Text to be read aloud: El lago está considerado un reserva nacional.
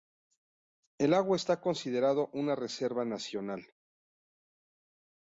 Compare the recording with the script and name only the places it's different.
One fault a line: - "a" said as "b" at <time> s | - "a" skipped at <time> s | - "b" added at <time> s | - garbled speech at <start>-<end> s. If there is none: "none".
- "un" said as "una" at 2.3 s